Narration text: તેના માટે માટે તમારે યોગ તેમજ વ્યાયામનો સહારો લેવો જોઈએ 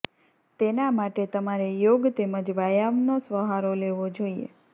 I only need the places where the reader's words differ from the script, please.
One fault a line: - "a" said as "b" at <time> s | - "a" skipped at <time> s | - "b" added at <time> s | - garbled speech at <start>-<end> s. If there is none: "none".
- "માટે" skipped at 1.2 s